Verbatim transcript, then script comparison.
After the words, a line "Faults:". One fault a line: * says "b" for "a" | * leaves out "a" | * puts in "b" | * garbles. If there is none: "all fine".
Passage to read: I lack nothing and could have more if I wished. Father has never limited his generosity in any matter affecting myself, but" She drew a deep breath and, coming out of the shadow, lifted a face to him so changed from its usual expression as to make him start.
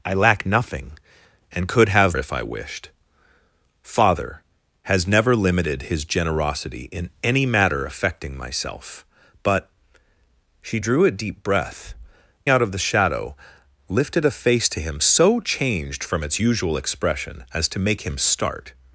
I lack nothing and could have if I wished. Father has never limited his generosity in any matter affecting myself, but" She drew a deep breath out of the shadow, lifted a face to him so changed from its usual expression as to make him start.
Faults:
* leaves out "more"
* leaves out "and coming"